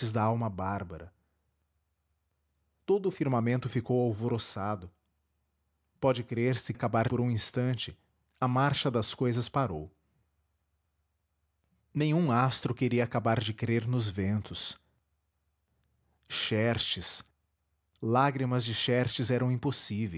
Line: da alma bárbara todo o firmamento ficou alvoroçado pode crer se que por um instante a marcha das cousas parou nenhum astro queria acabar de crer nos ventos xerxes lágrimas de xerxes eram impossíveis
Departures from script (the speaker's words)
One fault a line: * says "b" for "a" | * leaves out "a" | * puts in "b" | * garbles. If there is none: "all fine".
* says "acabar" for "que"